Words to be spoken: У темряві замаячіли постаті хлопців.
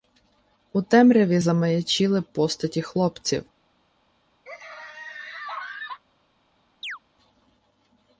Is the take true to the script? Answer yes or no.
yes